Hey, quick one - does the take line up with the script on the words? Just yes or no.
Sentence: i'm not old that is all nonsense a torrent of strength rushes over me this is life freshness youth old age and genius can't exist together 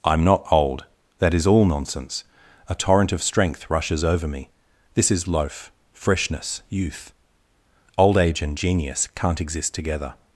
no